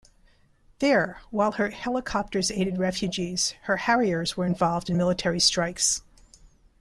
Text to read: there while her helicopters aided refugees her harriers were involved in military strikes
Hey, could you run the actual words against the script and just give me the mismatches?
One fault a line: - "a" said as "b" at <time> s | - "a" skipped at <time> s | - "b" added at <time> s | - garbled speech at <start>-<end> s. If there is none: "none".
none